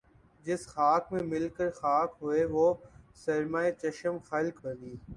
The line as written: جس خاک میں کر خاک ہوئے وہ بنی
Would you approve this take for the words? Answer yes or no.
no